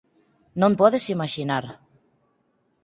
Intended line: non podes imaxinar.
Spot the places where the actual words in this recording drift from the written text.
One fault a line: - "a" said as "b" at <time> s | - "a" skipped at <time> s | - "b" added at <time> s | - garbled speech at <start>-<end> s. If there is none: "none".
none